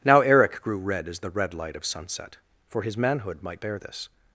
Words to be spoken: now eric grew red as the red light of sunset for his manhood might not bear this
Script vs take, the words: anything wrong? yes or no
yes